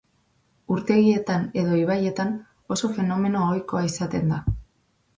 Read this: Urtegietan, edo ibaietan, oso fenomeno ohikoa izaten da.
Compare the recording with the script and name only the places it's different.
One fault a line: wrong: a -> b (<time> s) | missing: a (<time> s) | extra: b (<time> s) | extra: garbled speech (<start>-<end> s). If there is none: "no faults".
no faults